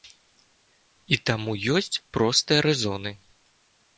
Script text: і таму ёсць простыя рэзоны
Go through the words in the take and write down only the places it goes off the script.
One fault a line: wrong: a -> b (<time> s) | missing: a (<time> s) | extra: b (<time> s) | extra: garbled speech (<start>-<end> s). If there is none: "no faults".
no faults